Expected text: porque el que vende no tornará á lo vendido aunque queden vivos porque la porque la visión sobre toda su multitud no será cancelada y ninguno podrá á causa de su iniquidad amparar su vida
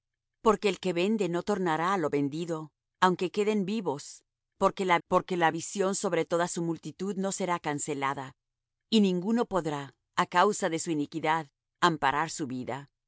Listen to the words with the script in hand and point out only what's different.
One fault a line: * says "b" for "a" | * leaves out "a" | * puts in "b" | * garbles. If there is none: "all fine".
all fine